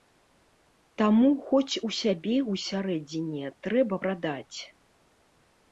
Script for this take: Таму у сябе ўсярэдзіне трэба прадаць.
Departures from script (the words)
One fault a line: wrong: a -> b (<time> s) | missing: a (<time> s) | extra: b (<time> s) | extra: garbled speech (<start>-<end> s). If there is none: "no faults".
extra: хоць (1.5 s)